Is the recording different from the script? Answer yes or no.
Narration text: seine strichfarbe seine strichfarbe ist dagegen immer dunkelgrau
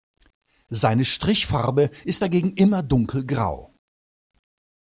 yes